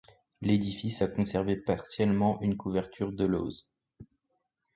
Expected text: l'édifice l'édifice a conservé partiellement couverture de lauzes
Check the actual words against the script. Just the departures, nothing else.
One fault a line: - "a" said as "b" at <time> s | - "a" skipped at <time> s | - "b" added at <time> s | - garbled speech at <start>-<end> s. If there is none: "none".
- "l'édifice" skipped at 1.0 s
- "une" added at 2.4 s